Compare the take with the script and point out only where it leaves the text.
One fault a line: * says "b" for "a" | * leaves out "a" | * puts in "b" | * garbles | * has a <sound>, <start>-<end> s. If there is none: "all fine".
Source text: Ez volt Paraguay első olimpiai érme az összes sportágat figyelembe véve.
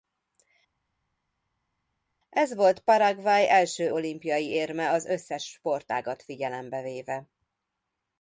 all fine